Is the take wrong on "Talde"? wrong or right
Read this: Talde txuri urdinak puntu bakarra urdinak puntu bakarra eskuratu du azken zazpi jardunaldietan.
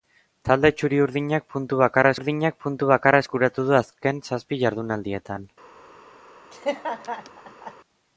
right